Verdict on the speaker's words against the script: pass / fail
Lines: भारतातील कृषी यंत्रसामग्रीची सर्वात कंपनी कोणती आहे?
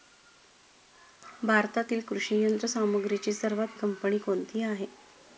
pass